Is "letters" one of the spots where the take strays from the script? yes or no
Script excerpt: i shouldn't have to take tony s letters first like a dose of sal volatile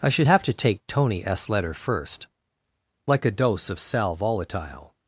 yes